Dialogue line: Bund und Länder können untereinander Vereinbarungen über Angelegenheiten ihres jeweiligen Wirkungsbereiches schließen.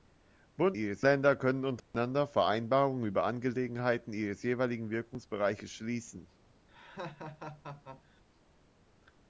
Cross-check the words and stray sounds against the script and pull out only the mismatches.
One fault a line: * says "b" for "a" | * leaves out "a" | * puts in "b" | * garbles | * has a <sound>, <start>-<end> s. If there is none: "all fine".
* says "ihres" for "und"
* has a dropout, 1.8-1.9 s
* has a laugh, 6.7-8.2 s